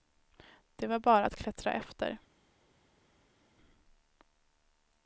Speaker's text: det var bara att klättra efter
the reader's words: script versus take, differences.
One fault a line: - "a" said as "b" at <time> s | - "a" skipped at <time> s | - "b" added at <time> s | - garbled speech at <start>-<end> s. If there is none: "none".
none